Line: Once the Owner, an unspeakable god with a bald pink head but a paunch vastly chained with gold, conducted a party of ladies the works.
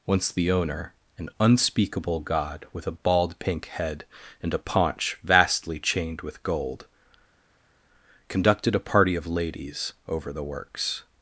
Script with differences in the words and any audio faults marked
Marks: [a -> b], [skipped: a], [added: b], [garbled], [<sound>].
Once the Owner, an unspeakable god with a bald pink head [but -> and] a paunch vastly chained with gold, conducted a party of ladies [added: over] the works.